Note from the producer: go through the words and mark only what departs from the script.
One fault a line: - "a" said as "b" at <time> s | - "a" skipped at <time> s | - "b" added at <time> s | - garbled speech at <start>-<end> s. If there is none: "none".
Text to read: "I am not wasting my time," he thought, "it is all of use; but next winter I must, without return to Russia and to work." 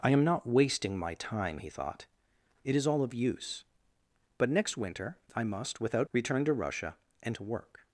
none